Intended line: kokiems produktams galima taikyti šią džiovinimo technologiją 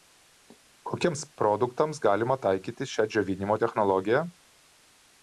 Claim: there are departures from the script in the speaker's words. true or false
false